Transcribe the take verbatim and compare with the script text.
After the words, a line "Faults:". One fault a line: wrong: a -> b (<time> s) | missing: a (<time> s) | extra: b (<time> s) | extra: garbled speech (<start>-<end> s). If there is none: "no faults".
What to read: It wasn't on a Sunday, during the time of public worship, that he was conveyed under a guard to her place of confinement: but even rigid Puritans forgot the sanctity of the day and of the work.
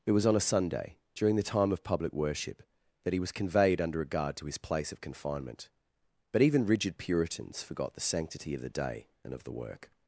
It was on a Sunday, during the time of public worship, that he was conveyed under a guard to his place of confinement: but even rigid Puritans forgot the sanctity of the day and of the work.
Faults:
wrong: wasn't -> was (0.1 s)
wrong: her -> his (4.5 s)